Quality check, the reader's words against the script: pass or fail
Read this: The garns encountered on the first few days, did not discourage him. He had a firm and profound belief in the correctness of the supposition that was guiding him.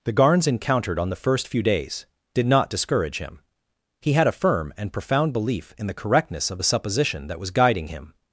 pass